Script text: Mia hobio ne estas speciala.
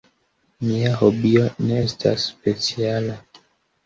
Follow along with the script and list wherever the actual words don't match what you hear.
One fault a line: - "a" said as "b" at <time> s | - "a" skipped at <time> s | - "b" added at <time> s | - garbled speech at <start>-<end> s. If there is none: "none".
none